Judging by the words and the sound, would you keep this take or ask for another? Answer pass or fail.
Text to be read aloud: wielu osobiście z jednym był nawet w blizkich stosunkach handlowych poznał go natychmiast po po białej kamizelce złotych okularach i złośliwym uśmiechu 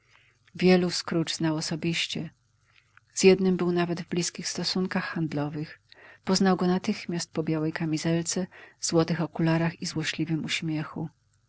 fail